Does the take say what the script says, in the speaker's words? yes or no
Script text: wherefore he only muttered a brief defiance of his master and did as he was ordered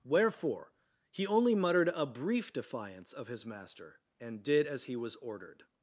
yes